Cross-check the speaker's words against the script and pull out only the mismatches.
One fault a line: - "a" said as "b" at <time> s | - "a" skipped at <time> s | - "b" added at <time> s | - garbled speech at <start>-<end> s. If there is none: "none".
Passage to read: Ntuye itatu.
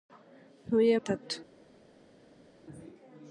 none